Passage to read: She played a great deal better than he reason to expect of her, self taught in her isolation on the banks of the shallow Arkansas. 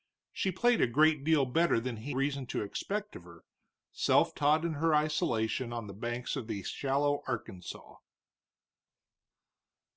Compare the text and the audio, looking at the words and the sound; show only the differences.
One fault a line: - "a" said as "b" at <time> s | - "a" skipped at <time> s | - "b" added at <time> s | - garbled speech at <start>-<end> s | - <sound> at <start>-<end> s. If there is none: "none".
none